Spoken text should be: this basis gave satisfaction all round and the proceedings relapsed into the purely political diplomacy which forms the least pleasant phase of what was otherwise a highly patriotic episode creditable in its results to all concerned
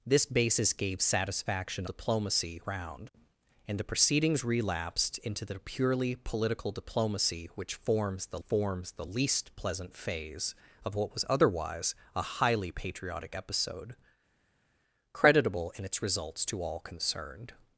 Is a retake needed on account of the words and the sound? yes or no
yes